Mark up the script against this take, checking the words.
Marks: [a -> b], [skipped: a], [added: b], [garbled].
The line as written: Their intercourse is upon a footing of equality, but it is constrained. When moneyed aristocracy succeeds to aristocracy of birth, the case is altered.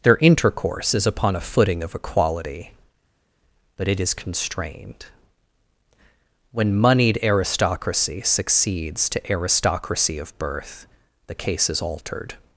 Their intercourse is upon a footing of equality, but it is constrained. When moneyed aristocracy succeeds to aristocracy of birth, the case is altered.